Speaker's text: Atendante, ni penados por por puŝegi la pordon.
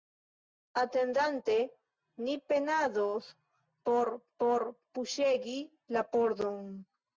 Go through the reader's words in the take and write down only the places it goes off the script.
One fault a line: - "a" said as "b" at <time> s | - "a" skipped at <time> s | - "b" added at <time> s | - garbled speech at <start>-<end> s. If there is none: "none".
none